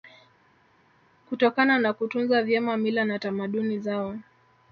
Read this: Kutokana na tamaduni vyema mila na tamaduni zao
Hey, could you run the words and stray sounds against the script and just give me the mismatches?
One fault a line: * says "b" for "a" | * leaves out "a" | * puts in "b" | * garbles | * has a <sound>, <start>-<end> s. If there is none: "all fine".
* says "kutunza" for "tamaduni"